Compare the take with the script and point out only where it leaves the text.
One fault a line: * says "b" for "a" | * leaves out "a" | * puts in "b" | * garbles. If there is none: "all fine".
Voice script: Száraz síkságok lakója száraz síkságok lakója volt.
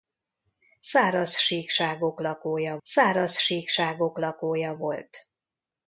all fine